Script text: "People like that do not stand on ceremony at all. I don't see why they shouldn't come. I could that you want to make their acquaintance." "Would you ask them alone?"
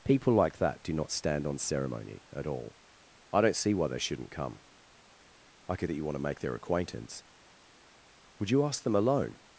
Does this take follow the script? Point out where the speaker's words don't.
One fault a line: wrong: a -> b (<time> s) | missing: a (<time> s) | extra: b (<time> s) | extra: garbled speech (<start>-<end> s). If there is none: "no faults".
no faults